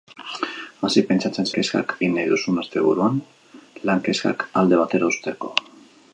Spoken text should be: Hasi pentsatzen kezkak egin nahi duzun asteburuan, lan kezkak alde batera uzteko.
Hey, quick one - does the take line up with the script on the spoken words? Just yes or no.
yes